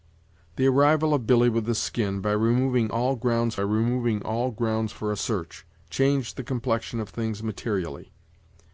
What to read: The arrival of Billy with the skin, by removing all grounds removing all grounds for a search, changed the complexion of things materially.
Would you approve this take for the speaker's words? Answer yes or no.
yes